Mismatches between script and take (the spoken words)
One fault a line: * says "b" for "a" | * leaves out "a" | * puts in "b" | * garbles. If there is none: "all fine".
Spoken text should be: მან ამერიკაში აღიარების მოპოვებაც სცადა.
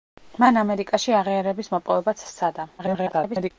* garbles